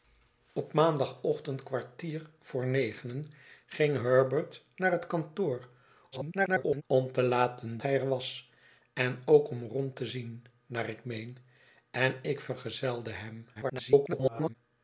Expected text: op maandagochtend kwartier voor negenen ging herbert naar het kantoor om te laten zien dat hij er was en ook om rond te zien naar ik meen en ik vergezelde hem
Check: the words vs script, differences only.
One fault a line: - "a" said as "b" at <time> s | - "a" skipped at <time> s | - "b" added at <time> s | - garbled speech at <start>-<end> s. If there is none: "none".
- garbled speech at 6.1-6.8 s
- "zien dat" skipped at 7.8 s
- garbled speech at 13.5-14.6 s